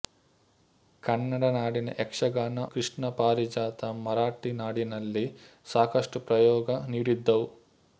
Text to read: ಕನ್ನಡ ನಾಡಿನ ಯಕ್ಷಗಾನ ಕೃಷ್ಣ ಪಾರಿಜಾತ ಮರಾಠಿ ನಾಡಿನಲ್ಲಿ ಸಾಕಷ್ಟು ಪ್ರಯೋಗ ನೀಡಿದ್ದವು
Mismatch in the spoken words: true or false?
false